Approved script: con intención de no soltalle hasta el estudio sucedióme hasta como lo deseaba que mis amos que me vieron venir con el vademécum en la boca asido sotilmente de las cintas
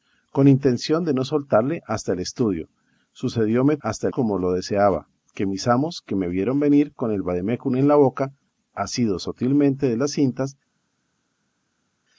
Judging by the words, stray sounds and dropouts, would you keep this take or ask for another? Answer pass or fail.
pass